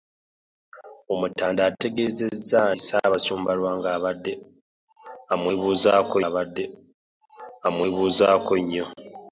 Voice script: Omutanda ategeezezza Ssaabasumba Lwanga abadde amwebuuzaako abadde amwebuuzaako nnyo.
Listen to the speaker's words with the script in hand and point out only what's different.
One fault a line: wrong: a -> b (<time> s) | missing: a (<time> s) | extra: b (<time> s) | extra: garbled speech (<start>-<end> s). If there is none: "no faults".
no faults